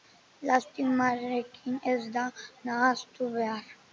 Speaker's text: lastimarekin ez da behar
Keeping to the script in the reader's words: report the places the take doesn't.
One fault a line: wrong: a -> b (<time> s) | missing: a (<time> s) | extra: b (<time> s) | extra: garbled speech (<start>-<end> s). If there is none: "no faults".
extra: nahastu (2.7 s)